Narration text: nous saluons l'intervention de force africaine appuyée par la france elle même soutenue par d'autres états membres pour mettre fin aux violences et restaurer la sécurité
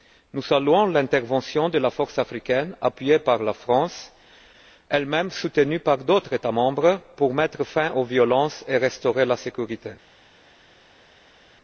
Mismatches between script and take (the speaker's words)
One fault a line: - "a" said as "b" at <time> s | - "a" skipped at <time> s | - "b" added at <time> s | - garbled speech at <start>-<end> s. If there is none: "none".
- "la" added at 1.8 s